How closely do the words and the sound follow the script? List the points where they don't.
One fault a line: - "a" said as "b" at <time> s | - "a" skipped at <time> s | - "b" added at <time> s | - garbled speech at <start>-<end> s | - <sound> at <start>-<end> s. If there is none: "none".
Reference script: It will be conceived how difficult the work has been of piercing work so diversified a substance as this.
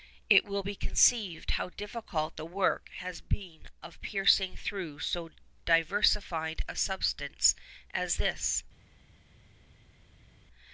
- "work" said as "through" at 4.5 s